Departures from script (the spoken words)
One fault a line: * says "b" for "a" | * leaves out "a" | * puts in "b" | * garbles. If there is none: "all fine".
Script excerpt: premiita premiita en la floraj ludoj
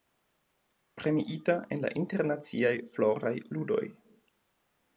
* leaves out "premiita"
* puts in "internaciaj"